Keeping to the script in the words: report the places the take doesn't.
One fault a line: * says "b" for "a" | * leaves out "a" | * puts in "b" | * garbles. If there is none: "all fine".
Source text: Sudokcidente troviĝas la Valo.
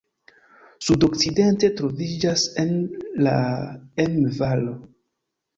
* puts in "Emme"